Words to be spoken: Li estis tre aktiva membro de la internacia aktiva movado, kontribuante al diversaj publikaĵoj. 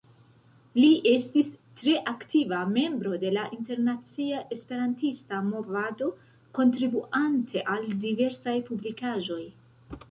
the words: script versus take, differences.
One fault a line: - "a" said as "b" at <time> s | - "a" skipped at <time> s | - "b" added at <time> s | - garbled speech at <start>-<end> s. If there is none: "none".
- "aktiva" said as "esperantista" at 4.6 s